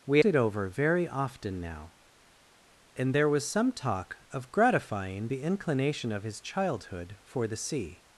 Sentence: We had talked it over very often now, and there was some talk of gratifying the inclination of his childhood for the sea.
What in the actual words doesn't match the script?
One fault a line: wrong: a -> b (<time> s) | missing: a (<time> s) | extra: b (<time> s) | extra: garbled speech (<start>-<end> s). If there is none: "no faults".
missing: had talked (0.2 s)